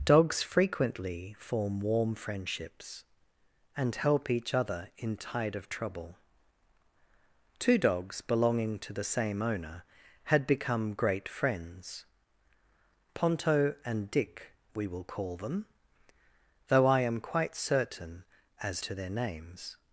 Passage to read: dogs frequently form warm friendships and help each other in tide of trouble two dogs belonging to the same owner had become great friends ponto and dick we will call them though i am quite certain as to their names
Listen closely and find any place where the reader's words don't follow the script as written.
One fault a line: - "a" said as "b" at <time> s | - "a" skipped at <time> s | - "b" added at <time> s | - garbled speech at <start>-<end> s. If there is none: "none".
none